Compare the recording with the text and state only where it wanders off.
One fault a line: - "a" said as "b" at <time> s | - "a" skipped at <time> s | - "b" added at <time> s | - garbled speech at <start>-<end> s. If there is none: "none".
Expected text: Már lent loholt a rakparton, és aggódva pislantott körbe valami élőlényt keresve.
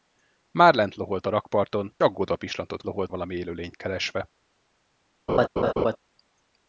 - "és" skipped at 2.0 s
- "körbe" said as "loholt" at 2.8 s